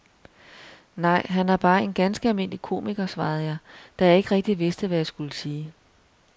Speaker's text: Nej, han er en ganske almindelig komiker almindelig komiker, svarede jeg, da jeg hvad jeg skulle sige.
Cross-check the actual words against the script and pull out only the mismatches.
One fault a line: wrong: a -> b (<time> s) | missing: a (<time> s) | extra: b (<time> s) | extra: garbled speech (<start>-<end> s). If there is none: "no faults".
extra: bare (1.6 s)
missing: almindelig komiker (3.0 s)
extra: ikke rigtig vidste (4.2 s)